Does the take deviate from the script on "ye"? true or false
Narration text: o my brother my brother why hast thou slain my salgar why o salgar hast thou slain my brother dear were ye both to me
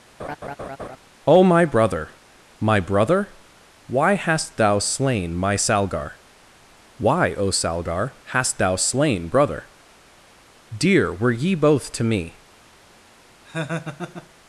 false